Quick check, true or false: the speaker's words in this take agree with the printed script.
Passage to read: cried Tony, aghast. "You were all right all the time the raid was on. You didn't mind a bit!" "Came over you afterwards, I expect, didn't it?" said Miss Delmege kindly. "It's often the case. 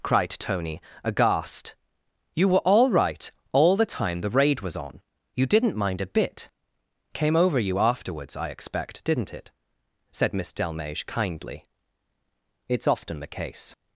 true